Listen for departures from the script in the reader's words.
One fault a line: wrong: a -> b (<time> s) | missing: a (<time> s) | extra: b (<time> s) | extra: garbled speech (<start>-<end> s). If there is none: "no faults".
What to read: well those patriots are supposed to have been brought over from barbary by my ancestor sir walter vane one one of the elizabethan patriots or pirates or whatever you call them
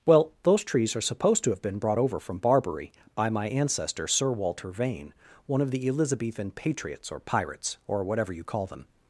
wrong: patriots -> trees (0.6 s)
missing: one (5.6 s)